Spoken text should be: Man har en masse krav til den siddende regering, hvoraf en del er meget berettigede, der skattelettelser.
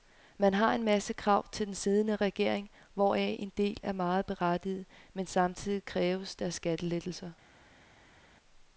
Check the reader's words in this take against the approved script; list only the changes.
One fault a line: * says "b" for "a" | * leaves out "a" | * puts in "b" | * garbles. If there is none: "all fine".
* puts in "men samtidig kræves"